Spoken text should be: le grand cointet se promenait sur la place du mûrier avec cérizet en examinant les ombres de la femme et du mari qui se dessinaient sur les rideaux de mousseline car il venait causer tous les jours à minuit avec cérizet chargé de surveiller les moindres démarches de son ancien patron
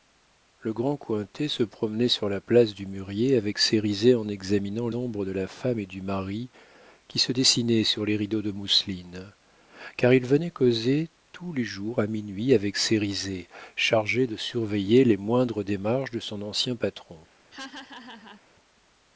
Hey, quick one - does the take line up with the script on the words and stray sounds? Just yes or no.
no